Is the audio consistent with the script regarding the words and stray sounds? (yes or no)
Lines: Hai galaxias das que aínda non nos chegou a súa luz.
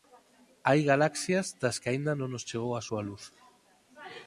yes